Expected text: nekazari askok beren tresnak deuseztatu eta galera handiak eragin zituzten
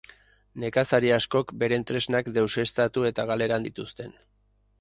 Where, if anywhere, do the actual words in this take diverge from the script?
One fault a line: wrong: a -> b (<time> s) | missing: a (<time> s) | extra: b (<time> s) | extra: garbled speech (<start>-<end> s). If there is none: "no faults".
missing: handiak eragin (3.6 s)